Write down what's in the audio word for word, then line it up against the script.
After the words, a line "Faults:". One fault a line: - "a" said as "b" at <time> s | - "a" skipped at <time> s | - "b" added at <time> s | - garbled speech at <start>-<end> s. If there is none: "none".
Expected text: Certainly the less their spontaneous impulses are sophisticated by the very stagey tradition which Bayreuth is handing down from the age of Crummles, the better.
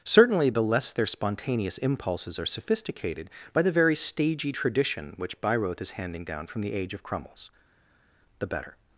Certainly the less their spontaneous impulses are sophisticated by the very stagey tradition which Bayreuth is handing down from the age of Crummles, the better.
Faults:
none